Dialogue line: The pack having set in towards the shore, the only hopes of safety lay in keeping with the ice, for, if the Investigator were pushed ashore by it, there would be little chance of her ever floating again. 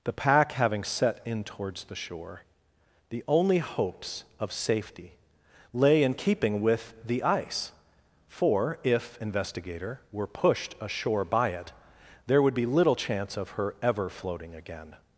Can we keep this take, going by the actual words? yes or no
no